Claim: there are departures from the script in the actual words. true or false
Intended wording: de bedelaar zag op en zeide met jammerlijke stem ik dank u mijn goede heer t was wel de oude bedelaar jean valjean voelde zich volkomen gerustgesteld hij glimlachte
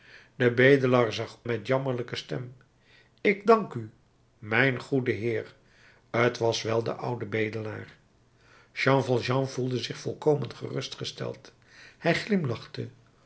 true